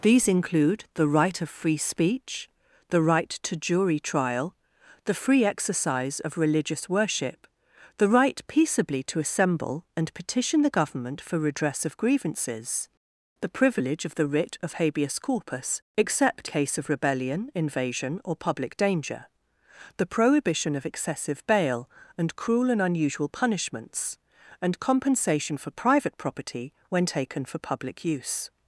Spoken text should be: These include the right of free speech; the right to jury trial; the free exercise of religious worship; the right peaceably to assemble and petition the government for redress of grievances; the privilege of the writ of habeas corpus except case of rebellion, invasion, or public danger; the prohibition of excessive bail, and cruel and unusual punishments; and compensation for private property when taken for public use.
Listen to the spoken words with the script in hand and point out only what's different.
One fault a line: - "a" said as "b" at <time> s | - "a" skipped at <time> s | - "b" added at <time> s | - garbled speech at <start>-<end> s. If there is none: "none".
none